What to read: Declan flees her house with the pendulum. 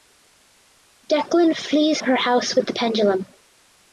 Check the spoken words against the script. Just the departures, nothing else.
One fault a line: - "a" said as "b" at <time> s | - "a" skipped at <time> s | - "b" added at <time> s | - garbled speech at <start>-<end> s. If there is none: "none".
none